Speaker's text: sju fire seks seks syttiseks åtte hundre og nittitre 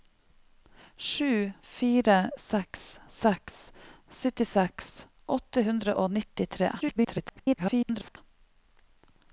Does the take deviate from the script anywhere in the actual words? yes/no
yes